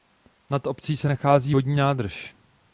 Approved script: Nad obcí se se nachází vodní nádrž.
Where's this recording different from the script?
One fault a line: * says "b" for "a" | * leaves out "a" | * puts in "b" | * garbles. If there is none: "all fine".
* leaves out "se"